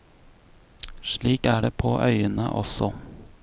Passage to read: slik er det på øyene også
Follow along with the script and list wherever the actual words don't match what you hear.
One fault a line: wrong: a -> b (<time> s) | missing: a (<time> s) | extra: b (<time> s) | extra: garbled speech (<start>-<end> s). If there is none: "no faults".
no faults